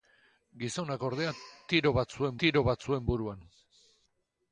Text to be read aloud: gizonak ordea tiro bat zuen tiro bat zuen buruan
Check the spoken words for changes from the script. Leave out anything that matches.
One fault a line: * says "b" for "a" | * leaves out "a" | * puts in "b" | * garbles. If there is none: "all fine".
all fine